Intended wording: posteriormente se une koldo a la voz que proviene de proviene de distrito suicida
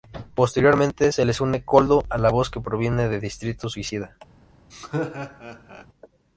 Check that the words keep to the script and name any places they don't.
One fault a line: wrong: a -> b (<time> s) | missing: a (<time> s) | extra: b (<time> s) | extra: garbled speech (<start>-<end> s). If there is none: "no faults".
extra: les (1.2 s)
missing: proviene de (3.2 s)